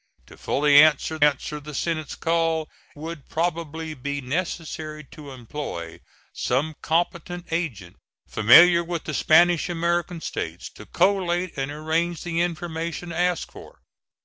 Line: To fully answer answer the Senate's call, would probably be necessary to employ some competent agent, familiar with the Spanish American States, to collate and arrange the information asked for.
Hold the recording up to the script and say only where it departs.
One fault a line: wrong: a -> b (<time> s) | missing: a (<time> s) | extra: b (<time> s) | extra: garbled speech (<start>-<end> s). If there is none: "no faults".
no faults